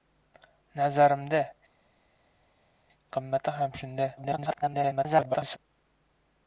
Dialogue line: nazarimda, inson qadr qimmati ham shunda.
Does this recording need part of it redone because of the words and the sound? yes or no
yes